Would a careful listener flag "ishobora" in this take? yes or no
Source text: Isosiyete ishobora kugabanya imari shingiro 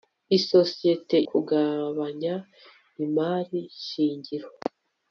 yes